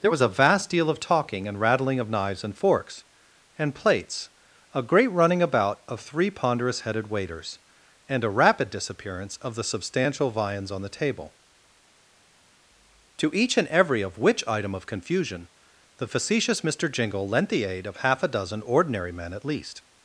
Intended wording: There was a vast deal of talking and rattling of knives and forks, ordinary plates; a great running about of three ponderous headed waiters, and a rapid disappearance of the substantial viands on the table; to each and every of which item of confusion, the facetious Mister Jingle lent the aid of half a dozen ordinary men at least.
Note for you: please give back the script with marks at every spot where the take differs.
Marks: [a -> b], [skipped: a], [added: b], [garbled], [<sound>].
There was a vast deal of talking and rattling of knives and forks, [ordinary -> and] plates; a great running about of three ponderous headed waiters, and a rapid disappearance of the substantial viands on the table; to each and every of which item of confusion, the facetious Mister Jingle lent the aid of half a dozen ordinary men at least.